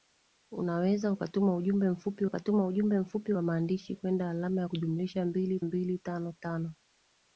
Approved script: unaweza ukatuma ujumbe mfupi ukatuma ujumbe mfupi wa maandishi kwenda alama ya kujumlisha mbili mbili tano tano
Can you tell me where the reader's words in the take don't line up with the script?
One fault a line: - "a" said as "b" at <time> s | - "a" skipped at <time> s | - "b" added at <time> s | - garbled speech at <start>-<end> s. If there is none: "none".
none